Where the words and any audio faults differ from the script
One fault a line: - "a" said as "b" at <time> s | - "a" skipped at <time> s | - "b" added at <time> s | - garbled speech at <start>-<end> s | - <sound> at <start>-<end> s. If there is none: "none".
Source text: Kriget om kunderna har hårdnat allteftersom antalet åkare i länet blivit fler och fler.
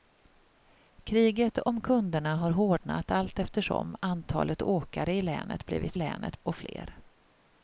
- "fler" said as "länet" at 5.9 s